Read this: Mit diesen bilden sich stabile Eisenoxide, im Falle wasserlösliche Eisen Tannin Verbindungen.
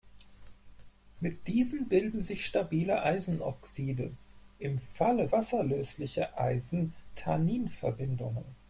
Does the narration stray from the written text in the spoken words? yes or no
no